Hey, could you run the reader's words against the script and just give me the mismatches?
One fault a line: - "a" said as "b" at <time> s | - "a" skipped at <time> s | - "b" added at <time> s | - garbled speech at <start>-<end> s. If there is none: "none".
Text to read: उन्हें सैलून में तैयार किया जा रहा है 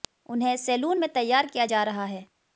none